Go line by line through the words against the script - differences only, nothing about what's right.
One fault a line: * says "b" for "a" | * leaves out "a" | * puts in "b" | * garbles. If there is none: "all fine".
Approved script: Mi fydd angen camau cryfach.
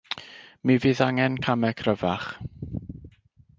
all fine